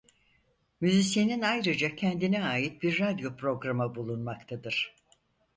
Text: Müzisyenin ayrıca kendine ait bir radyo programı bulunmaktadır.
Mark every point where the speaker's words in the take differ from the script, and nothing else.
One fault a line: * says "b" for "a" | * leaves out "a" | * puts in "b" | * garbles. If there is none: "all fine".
all fine